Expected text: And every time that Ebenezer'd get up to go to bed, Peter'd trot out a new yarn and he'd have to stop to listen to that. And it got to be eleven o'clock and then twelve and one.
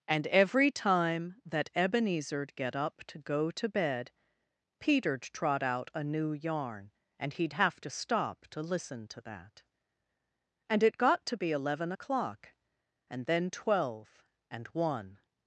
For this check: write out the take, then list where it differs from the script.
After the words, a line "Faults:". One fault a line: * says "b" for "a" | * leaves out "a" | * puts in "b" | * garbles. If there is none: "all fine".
And every time that Ebenezer'd get up to go to bed, Peter'd trot out a new yarn and he'd have to stop to listen to that. And it got to be eleven o'clock and then twelve and one.
Faults:
all fine